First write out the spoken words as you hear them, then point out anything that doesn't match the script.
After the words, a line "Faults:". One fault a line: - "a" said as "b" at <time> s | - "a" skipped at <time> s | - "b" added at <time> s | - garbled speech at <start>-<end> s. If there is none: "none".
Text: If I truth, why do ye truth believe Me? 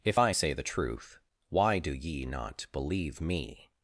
If I say the truth, why do ye not believe Me?
Faults:
- "say the" added at 0.3 s
- "truth" said as "not" at 2.2 s